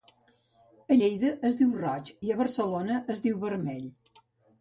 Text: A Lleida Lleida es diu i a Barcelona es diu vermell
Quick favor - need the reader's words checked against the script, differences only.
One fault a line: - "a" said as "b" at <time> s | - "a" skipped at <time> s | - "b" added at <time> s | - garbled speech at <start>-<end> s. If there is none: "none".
- "Lleida" skipped at 1.3 s
- "roig" added at 1.8 s